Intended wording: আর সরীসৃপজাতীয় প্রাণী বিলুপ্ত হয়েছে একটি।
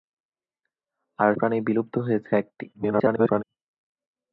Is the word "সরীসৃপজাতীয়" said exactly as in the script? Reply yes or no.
no